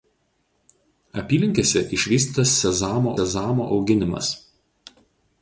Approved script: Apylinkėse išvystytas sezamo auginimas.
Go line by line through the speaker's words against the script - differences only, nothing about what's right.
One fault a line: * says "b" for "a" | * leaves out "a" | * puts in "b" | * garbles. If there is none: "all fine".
* puts in "sezamo"